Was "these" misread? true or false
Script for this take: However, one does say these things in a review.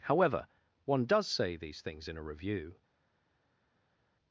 false